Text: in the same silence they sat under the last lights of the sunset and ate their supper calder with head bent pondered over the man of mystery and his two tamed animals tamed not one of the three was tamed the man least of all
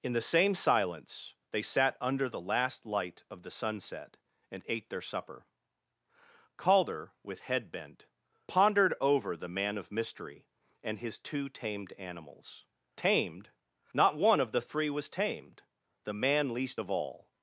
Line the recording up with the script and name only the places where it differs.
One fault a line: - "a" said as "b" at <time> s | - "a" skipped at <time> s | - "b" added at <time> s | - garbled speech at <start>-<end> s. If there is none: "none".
- "lights" said as "light" at 2.9 s